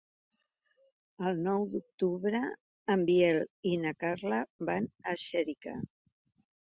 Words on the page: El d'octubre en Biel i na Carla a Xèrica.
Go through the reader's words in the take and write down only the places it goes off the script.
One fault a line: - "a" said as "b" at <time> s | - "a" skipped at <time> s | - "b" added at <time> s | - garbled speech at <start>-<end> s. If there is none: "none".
- "nou" added at 1.5 s
- "van" added at 4.7 s